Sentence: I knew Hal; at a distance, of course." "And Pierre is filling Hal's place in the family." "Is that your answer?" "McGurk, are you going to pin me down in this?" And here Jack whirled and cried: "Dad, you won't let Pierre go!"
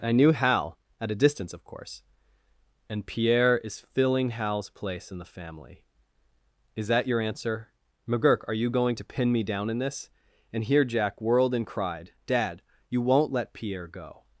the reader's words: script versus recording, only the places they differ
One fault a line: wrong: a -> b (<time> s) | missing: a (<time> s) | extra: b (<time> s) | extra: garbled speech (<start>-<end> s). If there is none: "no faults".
no faults